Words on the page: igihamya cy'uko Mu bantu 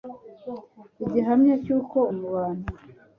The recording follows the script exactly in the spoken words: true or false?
true